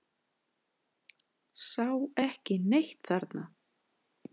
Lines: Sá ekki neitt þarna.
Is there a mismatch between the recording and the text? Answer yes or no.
no